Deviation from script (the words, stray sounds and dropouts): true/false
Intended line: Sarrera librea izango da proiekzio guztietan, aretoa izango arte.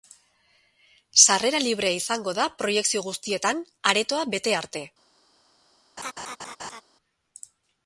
true